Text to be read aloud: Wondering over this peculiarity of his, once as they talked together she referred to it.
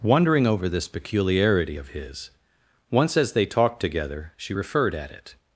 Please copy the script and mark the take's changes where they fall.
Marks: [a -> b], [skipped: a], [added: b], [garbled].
Wondering over this peculiarity of his, once as they talked together she referred [to -> at] it.